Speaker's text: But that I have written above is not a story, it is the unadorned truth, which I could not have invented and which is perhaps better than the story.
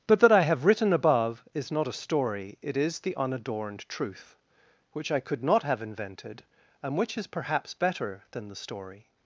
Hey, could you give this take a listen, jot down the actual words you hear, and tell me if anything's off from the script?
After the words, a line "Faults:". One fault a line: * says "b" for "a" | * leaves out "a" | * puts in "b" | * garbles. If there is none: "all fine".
But that I have written above is not a story, it is the unadorned truth, which I could not have invented and which is perhaps better than the story.
Faults:
all fine